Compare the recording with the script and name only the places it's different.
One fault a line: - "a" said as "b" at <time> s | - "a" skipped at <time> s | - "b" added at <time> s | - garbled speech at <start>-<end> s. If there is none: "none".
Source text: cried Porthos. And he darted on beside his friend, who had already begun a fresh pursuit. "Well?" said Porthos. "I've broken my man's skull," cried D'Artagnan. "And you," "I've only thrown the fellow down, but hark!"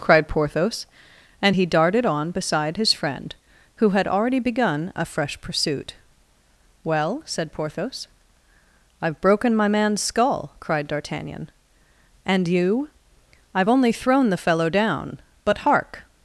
none